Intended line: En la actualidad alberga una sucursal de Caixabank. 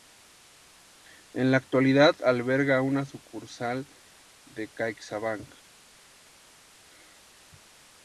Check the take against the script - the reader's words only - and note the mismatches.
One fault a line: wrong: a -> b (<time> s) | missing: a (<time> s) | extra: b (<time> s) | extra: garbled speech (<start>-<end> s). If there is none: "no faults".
no faults